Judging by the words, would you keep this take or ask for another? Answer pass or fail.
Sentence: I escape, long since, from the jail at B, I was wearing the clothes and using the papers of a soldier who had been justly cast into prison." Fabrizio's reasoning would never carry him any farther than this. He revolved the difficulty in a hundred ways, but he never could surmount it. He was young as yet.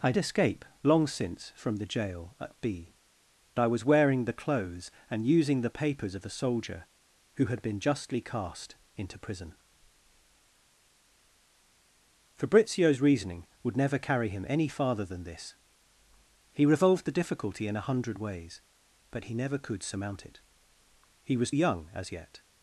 pass